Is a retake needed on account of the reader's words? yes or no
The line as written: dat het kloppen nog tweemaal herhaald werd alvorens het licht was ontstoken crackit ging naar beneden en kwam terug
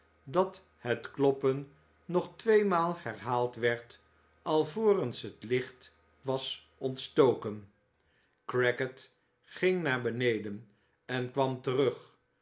no